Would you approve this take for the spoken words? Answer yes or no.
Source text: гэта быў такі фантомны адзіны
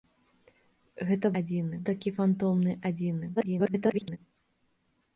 no